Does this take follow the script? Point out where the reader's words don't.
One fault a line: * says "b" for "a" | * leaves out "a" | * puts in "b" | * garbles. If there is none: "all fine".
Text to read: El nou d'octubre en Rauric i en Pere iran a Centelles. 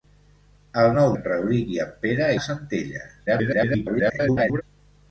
* leaves out "d'octubre"
* leaves out "iran"
* garbles